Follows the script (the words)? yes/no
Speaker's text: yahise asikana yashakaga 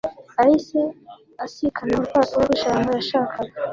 no